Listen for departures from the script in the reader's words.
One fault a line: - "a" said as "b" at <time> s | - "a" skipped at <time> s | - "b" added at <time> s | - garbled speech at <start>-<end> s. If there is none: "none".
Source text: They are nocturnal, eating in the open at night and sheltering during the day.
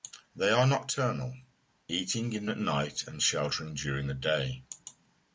- "the open" skipped at 2.5 s